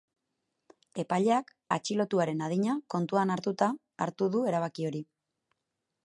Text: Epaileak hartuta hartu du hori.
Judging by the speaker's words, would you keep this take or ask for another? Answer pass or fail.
fail